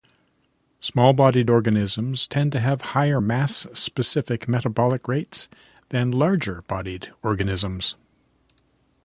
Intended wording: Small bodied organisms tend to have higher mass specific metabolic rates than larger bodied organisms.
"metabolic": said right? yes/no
yes